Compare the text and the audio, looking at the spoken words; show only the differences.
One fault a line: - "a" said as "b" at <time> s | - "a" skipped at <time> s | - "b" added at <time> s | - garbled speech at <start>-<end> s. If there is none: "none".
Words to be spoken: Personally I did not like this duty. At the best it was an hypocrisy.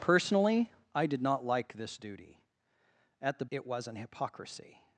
- "best" skipped at 3.5 s